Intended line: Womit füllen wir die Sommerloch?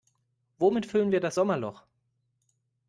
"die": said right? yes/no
no